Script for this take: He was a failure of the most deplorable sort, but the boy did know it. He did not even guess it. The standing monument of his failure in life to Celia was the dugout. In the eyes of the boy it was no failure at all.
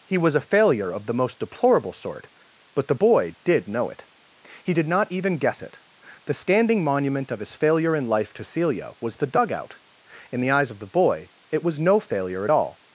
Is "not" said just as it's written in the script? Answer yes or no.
yes